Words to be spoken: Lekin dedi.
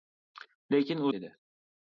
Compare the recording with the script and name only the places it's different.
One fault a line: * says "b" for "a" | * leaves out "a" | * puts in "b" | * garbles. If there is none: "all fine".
all fine